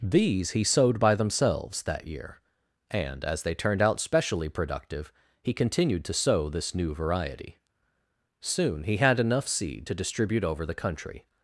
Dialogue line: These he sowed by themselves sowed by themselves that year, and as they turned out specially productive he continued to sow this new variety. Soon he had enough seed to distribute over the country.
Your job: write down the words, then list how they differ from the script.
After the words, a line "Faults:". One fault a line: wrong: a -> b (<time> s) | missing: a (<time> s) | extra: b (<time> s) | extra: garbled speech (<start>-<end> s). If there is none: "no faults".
These he sowed by themselves that year, and as they turned out specially productive he continued to sow this new variety. Soon he had enough seed to distribute over the country.
Faults:
missing: sowed by themselves (1.8 s)